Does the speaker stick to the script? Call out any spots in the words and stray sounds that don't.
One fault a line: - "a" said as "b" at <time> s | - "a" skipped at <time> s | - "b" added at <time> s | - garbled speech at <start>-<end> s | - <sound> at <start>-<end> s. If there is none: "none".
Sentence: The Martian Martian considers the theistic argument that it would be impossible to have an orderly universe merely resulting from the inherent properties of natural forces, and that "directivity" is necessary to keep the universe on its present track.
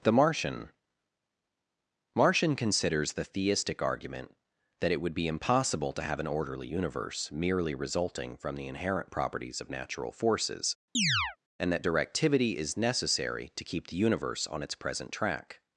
- chirp at 10.9-11.4 s